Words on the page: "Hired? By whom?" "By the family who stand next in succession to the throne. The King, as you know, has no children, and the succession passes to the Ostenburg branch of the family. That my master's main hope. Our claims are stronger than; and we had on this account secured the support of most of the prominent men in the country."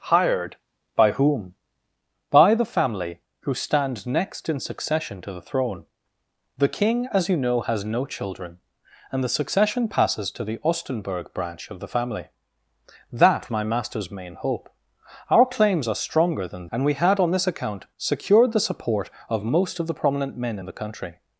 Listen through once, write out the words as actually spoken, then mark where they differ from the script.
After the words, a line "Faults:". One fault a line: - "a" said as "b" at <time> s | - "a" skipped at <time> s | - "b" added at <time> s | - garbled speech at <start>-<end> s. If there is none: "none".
"Hired? By whom?" "By the family who stand next in succession to the throne. The King, as you know, has no children, and the succession passes to the Ostenburg branch of the family. That my master's main hope. Our claims are stronger than; and we had on this account secured the support of most of the prominent men in the country."
Faults:
none